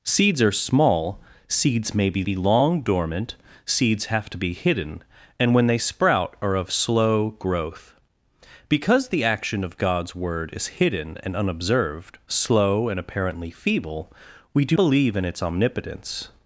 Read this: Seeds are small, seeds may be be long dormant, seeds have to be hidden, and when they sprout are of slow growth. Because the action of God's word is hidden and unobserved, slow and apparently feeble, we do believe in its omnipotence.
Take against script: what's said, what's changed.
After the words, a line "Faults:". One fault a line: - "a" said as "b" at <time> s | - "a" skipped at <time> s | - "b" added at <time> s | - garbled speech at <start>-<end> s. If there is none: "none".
Seeds are small, seeds may be be long dormant, seeds have to be hidden, and when they sprout are of slow growth. Because the action of God's word is hidden and unobserved, slow and apparently feeble, we do believe in its omnipotence.
Faults:
none